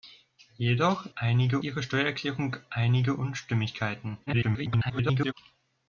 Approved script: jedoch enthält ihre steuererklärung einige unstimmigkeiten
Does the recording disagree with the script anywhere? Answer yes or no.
yes